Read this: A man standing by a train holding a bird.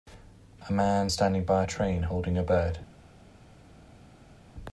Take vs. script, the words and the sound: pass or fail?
pass